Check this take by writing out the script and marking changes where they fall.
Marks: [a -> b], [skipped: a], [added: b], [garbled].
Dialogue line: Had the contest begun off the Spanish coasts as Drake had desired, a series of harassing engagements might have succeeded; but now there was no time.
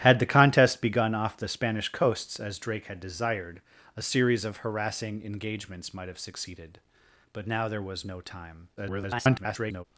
Had the contest begun off the Spanish coasts as Drake had desired, a series of harassing engagements might have succeeded; but now there was no time. [garbled]